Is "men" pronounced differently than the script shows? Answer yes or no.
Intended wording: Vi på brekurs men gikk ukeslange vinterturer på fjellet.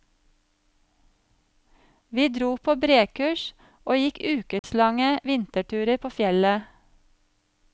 yes